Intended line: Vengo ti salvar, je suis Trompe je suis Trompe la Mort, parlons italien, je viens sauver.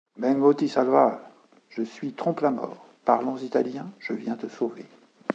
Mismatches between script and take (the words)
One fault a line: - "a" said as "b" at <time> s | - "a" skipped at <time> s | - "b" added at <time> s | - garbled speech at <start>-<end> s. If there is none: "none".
- "je suis Trompe" skipped at 2.4 s
- "te" added at 4.3 s